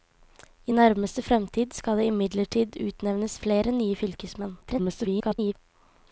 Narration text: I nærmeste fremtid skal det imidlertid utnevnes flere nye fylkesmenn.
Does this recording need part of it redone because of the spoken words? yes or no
yes